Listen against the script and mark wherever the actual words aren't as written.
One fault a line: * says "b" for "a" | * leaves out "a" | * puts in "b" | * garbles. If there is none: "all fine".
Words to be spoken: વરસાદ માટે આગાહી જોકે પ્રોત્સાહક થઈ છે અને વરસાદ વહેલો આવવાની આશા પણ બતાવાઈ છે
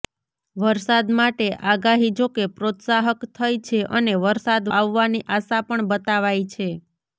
* leaves out "વહેલો"